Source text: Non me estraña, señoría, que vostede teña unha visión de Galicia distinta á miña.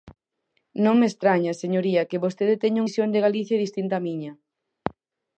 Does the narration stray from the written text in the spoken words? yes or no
yes